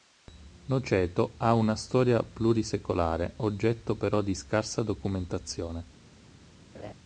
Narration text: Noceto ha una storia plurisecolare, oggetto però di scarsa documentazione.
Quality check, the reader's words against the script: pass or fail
pass